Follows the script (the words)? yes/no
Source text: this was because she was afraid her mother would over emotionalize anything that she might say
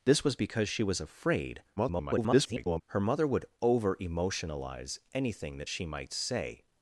no